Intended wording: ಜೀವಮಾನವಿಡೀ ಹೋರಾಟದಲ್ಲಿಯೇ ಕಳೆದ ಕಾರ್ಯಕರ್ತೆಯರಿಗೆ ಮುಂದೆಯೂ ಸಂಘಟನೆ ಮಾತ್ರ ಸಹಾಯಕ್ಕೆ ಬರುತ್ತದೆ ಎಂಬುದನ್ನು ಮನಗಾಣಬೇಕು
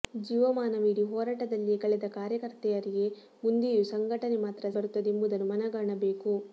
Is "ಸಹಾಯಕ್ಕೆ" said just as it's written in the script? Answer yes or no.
no